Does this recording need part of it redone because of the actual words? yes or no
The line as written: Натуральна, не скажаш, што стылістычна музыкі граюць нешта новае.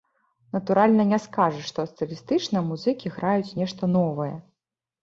no